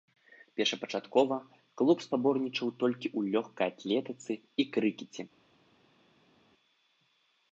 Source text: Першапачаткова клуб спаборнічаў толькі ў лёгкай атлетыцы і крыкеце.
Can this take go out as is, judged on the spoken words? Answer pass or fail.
pass